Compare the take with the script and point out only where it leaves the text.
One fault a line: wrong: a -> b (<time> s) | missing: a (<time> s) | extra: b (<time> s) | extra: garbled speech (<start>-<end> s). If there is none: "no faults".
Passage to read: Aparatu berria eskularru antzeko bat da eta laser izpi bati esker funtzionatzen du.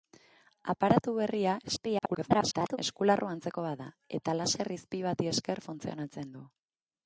extra: garbled speech (1.6-2.8 s)